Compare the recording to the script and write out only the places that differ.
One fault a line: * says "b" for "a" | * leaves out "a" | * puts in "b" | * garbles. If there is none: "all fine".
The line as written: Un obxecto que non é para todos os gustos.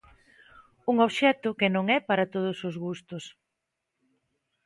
all fine